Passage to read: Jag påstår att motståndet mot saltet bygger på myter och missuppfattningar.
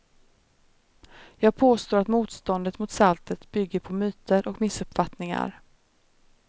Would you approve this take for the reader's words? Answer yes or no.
yes